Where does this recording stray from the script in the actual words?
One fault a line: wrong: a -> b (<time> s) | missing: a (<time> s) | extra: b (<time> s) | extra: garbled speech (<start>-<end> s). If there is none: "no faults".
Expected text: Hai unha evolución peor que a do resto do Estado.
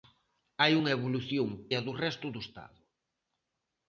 missing: peor que (1.5 s)